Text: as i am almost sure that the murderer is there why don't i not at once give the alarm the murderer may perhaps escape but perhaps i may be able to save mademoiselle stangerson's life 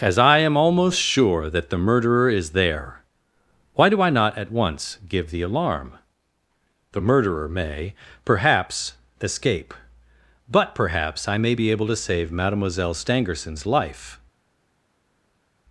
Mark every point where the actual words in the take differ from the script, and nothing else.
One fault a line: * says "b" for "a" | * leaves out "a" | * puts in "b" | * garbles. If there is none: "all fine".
* says "do" for "don't"